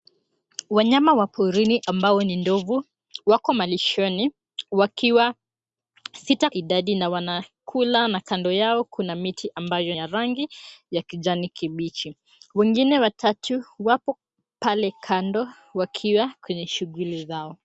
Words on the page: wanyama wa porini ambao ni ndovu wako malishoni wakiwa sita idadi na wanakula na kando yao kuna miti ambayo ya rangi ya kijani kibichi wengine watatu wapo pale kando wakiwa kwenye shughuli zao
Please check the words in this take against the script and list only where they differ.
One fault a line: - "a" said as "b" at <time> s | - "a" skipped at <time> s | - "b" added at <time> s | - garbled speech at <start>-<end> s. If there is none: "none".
none